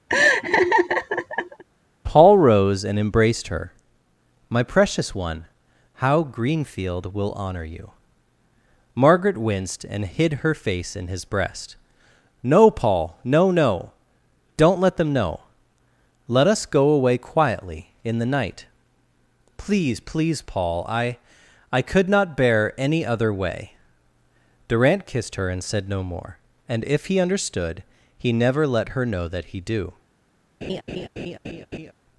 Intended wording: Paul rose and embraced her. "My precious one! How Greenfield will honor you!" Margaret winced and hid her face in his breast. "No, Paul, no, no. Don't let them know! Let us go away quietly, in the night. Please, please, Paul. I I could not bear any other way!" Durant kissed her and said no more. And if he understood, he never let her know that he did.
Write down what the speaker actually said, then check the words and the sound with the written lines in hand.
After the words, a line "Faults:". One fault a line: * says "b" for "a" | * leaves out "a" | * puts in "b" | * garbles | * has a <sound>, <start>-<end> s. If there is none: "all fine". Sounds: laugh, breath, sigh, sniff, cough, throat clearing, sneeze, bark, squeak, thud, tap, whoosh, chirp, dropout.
Paul rose and embraced her. "My precious one! How Greenfield will honor you!" Margaret winced and hid her face in his breast. "No, Paul, no, no. Don't let them know! Let us go away quietly, in the night. Please, please, Paul. I I could not bear any other way!" Durant kissed her and said no more. And if he understood, he never let her know that he do.
Faults:
* has a laugh, 0.1-1.6 s
* says "do" for "did"
* has a laugh, 30.6-31.9 s